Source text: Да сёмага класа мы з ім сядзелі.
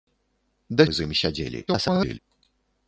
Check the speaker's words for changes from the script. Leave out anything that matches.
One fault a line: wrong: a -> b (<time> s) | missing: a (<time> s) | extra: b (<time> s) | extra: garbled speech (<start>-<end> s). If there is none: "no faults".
missing: сёмага класа (0.9 s)
extra: garbled speech (1.7-2.2 s)